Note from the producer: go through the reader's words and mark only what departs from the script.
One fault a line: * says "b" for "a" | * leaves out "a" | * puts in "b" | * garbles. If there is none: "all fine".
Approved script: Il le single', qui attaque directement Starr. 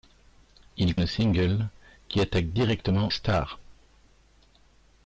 all fine